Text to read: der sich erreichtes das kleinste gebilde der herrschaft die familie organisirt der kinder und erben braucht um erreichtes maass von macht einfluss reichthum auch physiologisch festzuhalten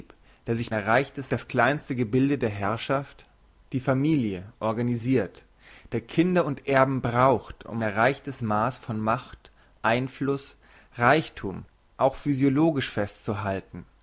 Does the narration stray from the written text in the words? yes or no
no